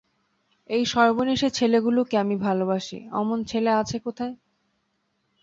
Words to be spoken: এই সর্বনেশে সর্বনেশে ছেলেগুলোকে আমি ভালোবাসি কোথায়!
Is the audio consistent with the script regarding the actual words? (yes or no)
no